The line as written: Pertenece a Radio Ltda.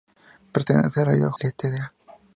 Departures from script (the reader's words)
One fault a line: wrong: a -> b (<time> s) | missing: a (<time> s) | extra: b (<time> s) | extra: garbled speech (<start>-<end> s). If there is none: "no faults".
no faults